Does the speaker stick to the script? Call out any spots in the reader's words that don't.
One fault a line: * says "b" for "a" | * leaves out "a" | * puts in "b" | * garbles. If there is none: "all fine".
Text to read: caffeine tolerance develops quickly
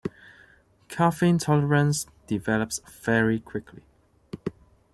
* puts in "very"